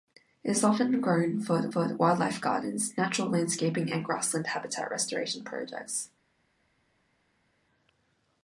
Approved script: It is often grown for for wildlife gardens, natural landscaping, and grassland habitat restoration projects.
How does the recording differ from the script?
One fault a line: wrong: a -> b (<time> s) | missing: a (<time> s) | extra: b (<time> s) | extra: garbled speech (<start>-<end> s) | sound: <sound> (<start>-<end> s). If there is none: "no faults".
no faults